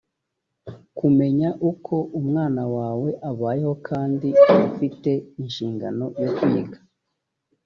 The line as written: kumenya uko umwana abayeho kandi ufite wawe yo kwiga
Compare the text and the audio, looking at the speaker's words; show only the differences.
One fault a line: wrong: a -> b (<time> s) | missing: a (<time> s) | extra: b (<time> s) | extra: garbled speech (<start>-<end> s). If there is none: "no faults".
extra: wawe (2.8 s)
wrong: wawe -> inshingano (5.4 s)